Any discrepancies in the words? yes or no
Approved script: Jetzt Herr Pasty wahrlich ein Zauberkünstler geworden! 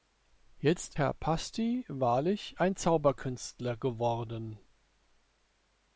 no